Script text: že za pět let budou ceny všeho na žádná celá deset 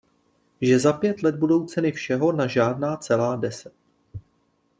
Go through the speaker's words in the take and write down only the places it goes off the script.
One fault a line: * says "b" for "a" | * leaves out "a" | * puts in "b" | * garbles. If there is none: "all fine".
all fine